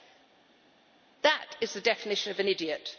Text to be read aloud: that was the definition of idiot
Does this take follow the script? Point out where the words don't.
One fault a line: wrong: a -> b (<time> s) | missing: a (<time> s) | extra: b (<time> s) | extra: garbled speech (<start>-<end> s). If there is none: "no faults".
wrong: was -> is (1.6 s)
extra: an (2.4 s)